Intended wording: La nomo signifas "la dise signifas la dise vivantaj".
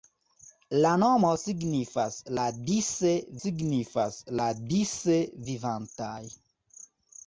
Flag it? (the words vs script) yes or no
no